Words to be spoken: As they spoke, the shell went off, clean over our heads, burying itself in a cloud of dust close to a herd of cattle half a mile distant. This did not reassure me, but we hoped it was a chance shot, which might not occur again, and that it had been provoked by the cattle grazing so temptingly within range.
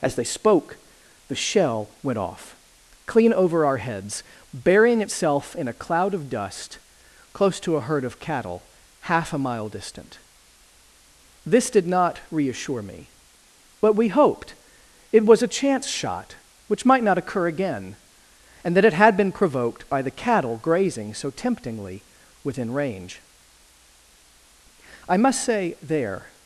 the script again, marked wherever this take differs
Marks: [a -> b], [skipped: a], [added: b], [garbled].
As they spoke, the shell went off, clean over our heads, burying itself in a cloud of dust close to a herd of cattle half a mile distant. This did not reassure me, but we hoped it was a chance shot, which might not occur again, and that it had been provoked by the cattle grazing so temptingly within range. [added: I must say there]